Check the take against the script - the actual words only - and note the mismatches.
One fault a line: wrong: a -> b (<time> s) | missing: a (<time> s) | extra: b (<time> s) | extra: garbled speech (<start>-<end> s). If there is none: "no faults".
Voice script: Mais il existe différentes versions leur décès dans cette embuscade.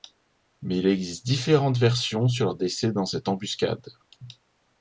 extra: sur (2.3 s)